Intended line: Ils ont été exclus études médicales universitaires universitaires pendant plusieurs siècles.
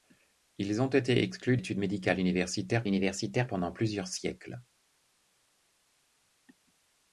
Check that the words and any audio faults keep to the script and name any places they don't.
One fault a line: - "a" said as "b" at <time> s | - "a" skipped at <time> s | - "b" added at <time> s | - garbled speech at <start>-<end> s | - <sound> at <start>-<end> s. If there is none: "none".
none